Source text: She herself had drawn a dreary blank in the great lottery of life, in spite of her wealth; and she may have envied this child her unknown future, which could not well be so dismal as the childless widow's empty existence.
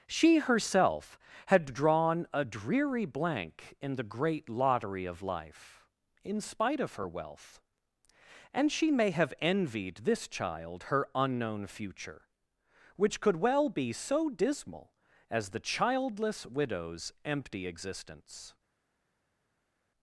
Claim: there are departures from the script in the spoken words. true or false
true